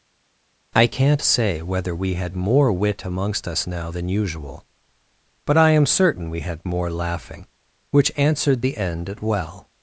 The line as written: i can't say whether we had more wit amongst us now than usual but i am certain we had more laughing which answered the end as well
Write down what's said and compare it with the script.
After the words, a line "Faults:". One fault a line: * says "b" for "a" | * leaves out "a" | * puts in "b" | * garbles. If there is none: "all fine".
i can't say whether we had more wit amongst us now than usual but i am certain we had more laughing which answered the end at well
Faults:
* says "at" for "as"